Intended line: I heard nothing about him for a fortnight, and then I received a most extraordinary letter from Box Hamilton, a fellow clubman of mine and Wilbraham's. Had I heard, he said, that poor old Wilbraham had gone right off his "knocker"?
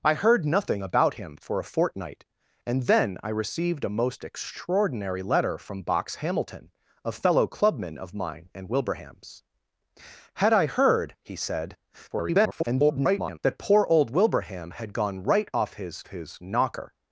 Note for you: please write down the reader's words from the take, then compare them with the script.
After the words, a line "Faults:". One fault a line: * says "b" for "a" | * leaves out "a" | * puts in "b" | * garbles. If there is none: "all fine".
I heard nothing about him for a fortnight, and then I received a most extraordinary letter from Box Hamilton, a fellow clubman of mine and Wilbraham's. Had I heard, he said, [garbled] that poor old Wilbraham had gone right off his his "knocker"?
Faults:
* garbles
* puts in "his"